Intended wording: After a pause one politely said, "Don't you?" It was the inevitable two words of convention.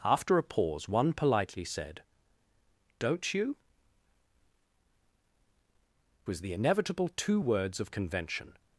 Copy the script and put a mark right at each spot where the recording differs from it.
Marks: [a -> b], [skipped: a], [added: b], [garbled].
After a pause one politely said, "Don't you?" [skipped: It] was the inevitable two words of convention.